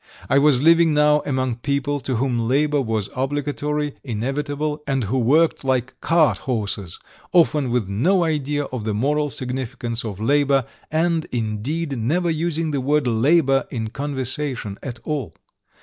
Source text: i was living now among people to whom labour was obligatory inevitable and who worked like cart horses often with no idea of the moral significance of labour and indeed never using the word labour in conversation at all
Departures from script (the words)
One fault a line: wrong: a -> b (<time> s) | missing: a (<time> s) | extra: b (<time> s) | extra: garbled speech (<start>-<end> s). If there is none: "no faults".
no faults